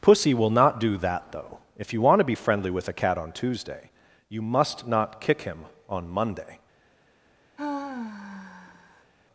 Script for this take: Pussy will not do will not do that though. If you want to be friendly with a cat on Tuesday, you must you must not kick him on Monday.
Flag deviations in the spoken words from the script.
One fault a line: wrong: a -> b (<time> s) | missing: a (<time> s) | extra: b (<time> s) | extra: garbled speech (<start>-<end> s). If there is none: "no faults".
missing: will not do (1.0 s)
missing: you must (4.9 s)